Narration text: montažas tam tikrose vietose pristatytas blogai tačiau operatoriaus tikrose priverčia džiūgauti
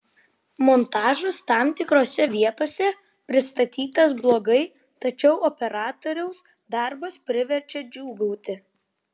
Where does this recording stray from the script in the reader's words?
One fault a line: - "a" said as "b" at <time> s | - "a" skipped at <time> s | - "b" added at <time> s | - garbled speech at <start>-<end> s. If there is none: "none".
- "tikrose" said as "darbas" at 6.8 s